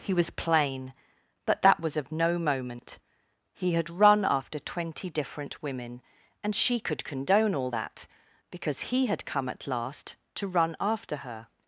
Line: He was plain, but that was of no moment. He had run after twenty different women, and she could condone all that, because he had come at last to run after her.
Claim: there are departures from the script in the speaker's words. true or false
false